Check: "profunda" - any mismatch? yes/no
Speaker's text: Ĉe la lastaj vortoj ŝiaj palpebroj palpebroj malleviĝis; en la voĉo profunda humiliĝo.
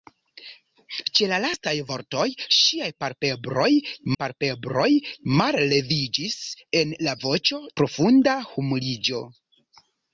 no